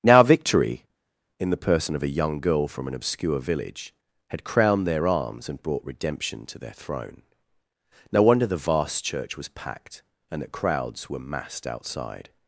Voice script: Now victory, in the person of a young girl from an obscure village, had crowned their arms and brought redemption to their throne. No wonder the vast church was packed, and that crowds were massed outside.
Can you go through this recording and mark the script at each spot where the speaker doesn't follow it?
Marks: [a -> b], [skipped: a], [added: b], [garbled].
Now victory, in the person of a young girl from an obscure village, had crowned their arms and brought redemption to their throne. No wonder the vast church was packed, and that crowds were massed outside.